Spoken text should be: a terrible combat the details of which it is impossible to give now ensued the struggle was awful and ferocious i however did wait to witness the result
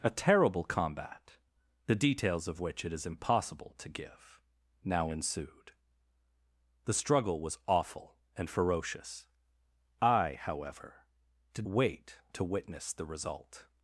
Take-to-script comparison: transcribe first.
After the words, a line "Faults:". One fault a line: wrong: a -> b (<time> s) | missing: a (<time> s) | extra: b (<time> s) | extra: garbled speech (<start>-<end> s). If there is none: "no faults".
a terrible combat the details of which it is impossible to give now ensued the struggle was awful and ferocious i however did wait to witness the result
Faults:
no faults